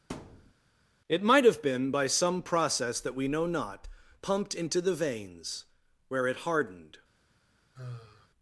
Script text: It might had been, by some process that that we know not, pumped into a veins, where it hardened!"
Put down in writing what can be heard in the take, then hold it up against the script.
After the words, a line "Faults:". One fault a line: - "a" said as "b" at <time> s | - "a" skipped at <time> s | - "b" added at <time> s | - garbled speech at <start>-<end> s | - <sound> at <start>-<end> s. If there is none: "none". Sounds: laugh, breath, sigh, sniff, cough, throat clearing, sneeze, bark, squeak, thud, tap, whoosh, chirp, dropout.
It might have been, by some process that we know not, pumped into the veins, where it hardened!"
Faults:
- thud at 0.1-0.5 s
- "had" said as "have" at 1.4 s
- "that" skipped at 3.1 s
- "a" said as "the" at 4.8 s
- sigh at 7.8-8.3 s